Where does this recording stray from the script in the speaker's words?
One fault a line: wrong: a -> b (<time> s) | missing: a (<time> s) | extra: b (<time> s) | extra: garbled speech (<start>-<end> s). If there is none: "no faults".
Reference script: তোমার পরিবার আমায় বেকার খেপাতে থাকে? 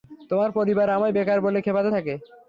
extra: বলে (1.5 s)